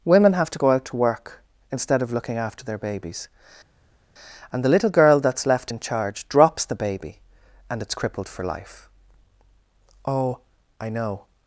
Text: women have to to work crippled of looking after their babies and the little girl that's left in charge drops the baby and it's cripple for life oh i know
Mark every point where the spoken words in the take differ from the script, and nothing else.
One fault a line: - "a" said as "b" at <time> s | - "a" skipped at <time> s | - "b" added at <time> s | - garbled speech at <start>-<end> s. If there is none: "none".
- "go out" added at 0.6 s
- "crippled" said as "instead" at 1.7 s
- "cripple" said as "crippled" at 7.9 s